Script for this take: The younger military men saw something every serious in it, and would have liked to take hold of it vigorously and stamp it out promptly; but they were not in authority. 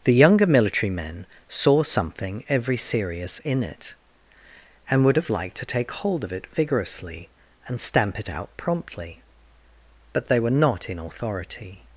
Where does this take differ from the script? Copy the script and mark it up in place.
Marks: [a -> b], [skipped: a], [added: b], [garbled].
The younger military men saw something every serious in it, and would have liked to take hold of it vigorously and stamp it out promptly; but they were not in authority.